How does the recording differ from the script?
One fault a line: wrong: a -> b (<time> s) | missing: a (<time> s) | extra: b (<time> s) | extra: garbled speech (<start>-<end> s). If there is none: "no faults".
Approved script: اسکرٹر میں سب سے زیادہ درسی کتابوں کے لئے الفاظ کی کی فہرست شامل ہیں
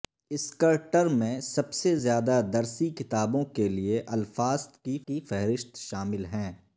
no faults